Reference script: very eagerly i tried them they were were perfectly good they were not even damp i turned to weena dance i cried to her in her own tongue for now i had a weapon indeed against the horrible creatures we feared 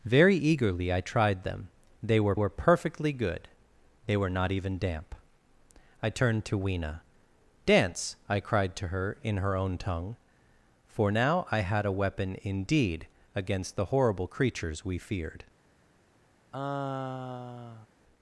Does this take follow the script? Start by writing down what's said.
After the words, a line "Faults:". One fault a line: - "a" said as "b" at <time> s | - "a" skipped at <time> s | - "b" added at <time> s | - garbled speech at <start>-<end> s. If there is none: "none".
very eagerly i tried them they were were perfectly good they were not even damp i turned to weena dance i cried to her in her own tongue for now i had a weapon indeed against the horrible creatures we feared
Faults:
none